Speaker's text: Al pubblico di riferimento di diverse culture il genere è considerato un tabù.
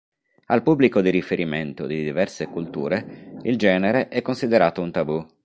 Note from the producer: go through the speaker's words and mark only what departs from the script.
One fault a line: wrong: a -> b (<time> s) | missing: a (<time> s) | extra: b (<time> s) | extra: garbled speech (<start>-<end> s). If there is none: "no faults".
no faults